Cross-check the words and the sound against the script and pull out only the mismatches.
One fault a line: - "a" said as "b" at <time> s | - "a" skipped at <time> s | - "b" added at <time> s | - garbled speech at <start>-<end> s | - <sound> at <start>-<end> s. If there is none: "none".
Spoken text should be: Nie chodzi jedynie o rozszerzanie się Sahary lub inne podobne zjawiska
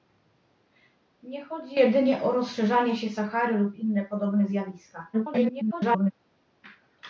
- garbled speech at 5.1-6.1 s